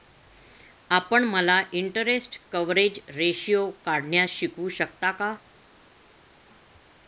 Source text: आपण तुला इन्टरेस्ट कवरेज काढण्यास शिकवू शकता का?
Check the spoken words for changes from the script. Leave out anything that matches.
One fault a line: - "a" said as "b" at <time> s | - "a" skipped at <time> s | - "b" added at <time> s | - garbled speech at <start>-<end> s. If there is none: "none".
- "तुला" said as "मला" at 1.2 s
- "रेशीओ" added at 3.1 s